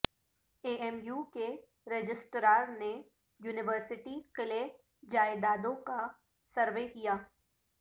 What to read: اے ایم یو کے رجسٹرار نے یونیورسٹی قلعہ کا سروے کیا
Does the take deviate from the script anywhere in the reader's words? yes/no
yes